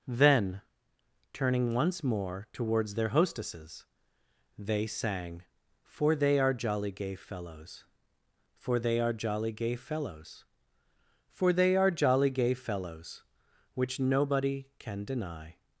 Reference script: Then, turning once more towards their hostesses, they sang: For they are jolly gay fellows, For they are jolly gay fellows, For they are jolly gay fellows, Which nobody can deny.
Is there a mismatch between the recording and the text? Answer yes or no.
no